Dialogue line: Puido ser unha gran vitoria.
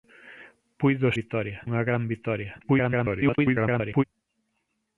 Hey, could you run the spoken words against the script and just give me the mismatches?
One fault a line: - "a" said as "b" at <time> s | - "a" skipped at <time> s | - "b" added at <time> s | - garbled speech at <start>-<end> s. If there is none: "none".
- "ser" said as "vitoria" at 1.2 s
- garbled speech at 2.6-4.0 s